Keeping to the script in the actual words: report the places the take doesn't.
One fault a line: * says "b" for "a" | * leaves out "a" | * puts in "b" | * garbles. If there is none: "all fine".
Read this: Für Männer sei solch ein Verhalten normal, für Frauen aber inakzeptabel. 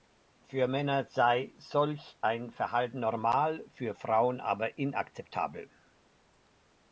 all fine